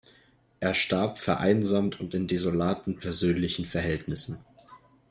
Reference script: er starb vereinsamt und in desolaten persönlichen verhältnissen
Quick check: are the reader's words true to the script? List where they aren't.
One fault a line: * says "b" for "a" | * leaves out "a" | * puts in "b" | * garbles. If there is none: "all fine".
all fine